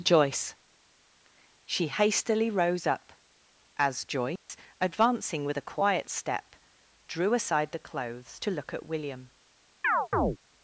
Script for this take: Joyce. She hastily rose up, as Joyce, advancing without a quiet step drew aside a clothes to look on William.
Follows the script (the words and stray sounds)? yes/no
no